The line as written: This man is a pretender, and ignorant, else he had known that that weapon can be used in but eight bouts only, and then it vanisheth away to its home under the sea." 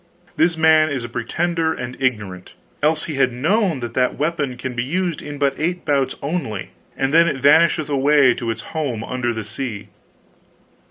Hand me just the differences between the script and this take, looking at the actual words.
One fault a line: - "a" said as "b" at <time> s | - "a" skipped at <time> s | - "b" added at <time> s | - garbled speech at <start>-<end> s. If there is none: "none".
none